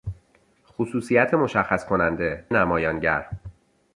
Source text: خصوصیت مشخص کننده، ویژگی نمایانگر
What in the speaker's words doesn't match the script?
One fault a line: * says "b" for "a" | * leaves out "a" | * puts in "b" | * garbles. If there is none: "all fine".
* leaves out "ویژگی"